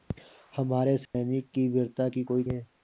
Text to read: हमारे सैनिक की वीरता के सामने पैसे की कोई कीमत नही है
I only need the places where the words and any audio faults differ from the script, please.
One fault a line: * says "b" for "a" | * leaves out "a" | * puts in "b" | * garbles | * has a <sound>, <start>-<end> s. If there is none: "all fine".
* has a dropout, 1.1-1.1 s
* leaves out "के सामने पैसे"
* leaves out "कीमत नही"